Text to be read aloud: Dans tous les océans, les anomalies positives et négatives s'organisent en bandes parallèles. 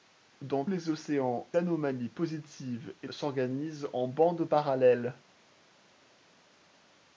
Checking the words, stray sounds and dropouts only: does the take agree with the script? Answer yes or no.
no